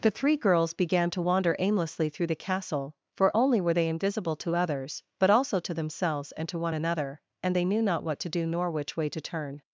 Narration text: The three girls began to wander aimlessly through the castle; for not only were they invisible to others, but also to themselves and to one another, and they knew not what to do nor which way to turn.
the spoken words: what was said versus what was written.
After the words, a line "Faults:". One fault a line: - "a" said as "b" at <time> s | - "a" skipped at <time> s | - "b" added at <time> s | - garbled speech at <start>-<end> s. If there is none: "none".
The three girls began to wander aimlessly through the castle; for only were they invisible to others, but also to themselves and to one another, and they knew not what to do nor which way to turn.
Faults:
- "not" skipped at 3.4 s